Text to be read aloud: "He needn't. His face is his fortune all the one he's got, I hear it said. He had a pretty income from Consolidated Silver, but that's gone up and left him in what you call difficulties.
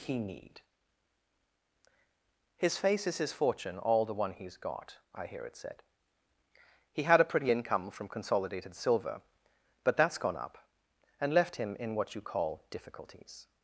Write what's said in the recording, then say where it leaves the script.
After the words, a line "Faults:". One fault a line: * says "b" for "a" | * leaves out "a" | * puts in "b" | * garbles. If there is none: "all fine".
"He need. His face is his fortune all the one he's got, I hear it said. He had a pretty income from Consolidated Silver, but that's gone up and left him in what you call difficulties.
Faults:
* says "need" for "needn't"